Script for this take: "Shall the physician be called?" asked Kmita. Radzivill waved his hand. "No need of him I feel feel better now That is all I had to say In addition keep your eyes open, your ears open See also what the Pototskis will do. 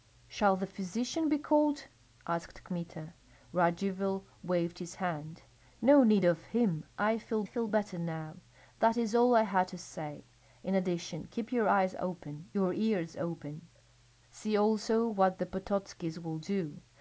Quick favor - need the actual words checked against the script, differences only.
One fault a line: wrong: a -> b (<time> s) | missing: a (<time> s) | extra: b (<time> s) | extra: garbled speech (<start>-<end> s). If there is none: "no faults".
no faults